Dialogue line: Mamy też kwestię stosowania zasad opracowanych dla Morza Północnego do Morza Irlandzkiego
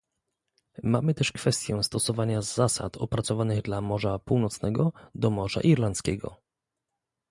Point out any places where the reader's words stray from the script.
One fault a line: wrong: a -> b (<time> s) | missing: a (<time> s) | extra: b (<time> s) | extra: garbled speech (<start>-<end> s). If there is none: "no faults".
no faults